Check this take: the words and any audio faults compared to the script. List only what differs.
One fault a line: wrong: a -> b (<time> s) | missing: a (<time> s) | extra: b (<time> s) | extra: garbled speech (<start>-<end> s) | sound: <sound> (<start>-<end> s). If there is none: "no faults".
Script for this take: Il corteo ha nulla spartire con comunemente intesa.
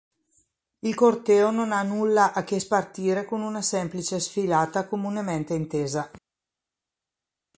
extra: non (1.5 s)
extra: a che (2.3 s)
extra: una semplice sfilata (3.4 s)